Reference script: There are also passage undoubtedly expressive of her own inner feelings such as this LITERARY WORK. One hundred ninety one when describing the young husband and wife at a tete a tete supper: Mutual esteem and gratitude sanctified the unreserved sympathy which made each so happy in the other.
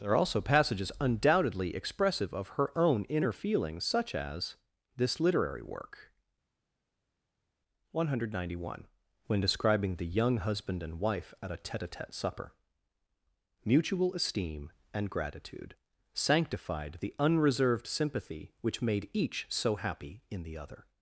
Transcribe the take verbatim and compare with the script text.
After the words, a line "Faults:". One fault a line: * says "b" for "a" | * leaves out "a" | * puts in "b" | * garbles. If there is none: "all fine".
There are also passages undoubtedly expressive of her own inner feelings such as this LITERARY WORK. One hundred ninety one when describing the young husband and wife at a tete a tete supper: Mutual esteem and gratitude sanctified the unreserved sympathy which made each so happy in the other.
Faults:
* says "passages" for "passage"